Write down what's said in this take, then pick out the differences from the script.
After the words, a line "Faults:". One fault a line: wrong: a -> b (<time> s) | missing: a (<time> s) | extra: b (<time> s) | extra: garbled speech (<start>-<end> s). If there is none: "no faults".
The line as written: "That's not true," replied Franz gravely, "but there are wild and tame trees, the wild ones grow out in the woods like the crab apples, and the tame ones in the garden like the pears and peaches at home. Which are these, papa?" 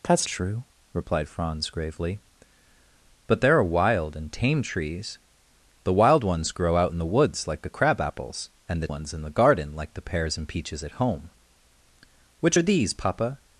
"That's true," replied Franz gravely, "but there are wild and tame trees, the wild ones grow out in the woods like the crab apples, and the ones in the garden like the pears and peaches at home. Which are these, papa?"
Faults:
missing: not (0.3 s)
missing: tame (8.9 s)